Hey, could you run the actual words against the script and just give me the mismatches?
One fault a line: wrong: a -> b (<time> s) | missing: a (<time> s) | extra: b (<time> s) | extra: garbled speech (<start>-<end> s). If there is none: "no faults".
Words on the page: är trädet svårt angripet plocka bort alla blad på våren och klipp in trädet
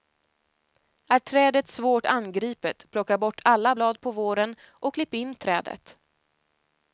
no faults